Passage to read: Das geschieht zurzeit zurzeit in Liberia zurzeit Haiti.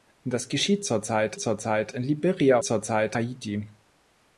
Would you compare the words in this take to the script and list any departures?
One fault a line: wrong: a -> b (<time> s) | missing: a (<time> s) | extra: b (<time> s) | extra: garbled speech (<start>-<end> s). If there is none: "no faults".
no faults